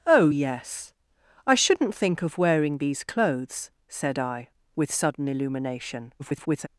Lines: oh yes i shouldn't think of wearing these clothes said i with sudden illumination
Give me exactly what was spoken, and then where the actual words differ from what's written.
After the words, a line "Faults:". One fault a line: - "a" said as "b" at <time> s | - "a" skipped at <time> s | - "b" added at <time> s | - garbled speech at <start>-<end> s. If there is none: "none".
oh yes i shouldn't think of wearing these clothes said i with sudden illumination [garbled]
Faults:
- garbled speech at 6.2-6.7 s